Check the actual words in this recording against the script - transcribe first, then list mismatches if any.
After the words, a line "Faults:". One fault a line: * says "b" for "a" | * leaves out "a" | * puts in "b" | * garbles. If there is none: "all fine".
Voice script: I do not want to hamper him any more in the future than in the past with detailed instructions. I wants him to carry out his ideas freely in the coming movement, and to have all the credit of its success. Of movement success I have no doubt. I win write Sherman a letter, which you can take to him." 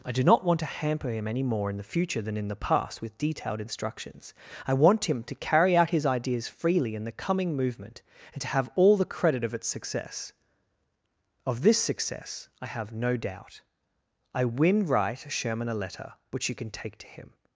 I do not want to hamper him any more in the future than in the past with detailed instructions. I want him to carry out his ideas freely in the coming movement, and to have all the credit of its success. Of this success I have no doubt. I win write Sherman a letter, which you can take to him."
Faults:
* says "want" for "wants"
* says "this" for "movement"